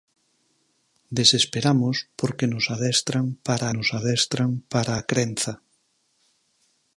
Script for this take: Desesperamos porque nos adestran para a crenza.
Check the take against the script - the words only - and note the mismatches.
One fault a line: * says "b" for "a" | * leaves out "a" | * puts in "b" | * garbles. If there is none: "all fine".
* puts in "nos adestran para"